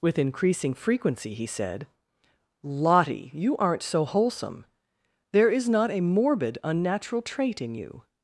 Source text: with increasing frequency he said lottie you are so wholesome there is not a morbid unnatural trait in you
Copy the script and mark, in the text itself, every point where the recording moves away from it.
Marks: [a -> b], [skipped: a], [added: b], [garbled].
with increasing frequency he said lottie you [are -> aren't] so wholesome there is not a morbid unnatural trait in you